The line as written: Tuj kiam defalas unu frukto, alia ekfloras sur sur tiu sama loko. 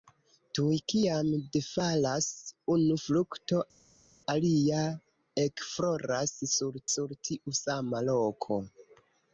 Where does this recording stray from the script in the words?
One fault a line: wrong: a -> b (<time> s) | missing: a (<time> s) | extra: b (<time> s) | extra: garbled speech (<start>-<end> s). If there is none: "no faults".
no faults